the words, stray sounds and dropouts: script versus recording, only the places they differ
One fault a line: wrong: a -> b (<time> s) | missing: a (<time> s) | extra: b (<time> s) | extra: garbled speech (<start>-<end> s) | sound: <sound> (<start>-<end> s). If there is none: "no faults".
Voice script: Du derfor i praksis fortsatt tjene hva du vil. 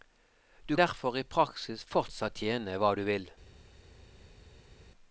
no faults